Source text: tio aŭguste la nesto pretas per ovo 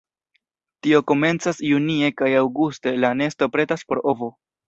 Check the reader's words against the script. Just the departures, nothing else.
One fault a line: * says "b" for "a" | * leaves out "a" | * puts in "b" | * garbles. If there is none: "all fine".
* puts in "komencas junie kaj"
* says "por" for "per"